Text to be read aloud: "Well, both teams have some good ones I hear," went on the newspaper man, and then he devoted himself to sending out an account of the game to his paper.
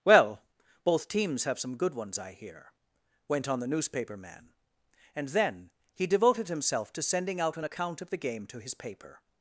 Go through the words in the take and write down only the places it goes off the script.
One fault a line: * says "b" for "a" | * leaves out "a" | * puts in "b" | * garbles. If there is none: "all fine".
all fine